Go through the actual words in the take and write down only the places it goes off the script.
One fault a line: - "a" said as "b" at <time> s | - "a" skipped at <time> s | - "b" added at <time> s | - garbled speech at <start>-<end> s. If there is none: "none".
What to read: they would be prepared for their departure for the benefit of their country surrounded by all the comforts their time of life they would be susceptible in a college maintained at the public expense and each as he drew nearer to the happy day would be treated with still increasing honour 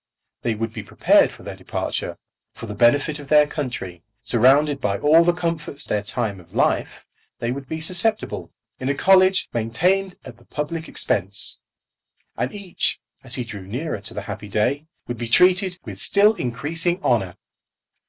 none